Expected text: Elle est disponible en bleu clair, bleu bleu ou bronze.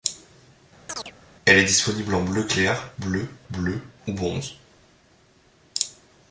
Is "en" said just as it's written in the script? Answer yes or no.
yes